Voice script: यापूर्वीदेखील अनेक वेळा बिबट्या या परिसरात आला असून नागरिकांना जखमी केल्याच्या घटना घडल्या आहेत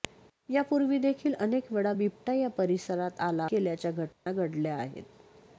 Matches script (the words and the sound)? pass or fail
fail